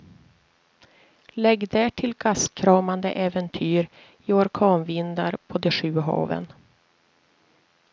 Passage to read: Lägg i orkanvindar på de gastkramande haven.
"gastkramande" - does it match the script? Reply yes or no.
no